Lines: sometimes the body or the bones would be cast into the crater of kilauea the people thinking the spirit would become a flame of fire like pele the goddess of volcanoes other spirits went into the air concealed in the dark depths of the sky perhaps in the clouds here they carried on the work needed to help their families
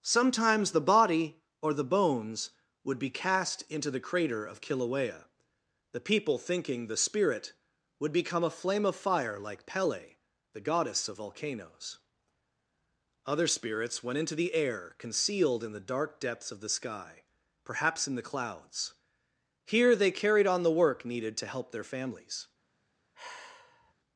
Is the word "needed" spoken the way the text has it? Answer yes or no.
yes